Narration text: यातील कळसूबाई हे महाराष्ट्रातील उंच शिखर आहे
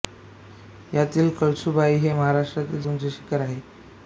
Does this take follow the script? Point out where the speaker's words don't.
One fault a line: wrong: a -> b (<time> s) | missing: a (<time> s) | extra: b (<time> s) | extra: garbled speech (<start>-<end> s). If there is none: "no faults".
no faults